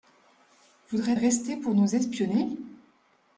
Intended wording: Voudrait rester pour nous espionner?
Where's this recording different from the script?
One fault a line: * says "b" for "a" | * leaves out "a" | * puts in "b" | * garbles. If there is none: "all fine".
all fine